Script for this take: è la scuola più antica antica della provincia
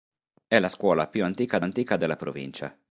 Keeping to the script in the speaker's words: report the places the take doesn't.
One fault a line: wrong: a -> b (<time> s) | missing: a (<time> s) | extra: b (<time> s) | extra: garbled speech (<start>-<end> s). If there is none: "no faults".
no faults